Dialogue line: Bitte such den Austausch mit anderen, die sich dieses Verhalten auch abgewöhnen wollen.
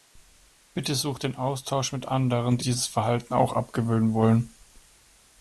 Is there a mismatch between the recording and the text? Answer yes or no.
yes